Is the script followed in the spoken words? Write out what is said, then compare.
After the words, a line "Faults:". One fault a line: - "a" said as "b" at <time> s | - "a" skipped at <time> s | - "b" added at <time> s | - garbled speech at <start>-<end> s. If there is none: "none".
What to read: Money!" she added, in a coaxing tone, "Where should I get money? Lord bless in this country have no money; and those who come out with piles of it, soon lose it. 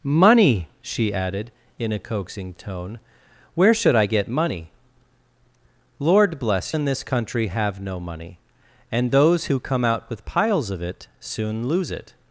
Money!" she added, in a coaxing tone, "Where should I get money? Lord bless in this country have no money; and those who come out with piles of it, soon lose it.
Faults:
none